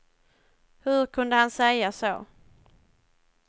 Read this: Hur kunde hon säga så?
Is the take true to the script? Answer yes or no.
no